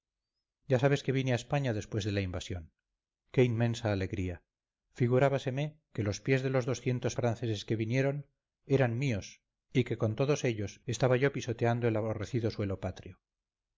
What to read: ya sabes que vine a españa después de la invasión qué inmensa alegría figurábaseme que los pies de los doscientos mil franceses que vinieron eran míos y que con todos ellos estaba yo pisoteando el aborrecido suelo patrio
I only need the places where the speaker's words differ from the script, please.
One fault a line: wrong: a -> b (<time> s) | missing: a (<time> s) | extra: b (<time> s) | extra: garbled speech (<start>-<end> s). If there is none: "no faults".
missing: mil (7.2 s)